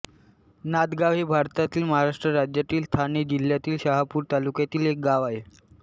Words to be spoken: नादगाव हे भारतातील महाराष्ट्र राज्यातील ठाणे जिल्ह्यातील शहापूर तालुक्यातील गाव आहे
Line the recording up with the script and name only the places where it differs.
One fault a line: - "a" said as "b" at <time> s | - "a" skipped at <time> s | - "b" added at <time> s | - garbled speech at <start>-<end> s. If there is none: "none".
- "एक" added at 4.9 s